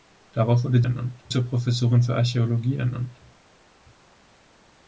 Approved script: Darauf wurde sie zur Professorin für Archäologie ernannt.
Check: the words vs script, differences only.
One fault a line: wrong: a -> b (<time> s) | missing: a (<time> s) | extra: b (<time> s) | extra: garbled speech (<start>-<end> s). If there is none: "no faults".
wrong: sie -> ernannt (0.8 s)